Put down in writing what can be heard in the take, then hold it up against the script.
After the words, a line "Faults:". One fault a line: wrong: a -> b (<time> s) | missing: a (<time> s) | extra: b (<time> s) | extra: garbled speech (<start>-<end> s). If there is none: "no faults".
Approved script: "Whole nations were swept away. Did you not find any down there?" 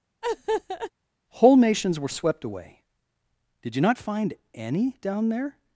"Whole nations were swept away. Did you not find any down there?"
Faults:
no faults